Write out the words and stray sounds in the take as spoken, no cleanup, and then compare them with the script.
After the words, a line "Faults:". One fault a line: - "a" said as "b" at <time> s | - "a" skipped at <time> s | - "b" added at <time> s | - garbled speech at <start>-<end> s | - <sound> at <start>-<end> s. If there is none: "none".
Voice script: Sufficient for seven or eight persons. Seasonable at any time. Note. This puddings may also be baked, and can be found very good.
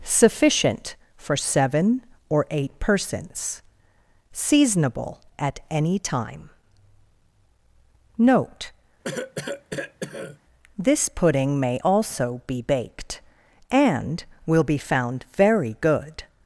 Sufficient for seven or eight persons. Seasonable at any time. Note. This pudding may also be baked, and will be found very good.
Faults:
- cough at 9.0-10.4 s
- "puddings" said as "pudding" at 11.1 s
- "can" said as "will" at 14.5 s